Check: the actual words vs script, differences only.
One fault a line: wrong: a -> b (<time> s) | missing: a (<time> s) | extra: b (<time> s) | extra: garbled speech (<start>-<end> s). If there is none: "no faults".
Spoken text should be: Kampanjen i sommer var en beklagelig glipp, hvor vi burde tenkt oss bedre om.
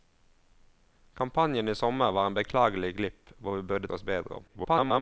missing: tenkt (3.9 s)
extra: garbled speech (4.5-5.0 s)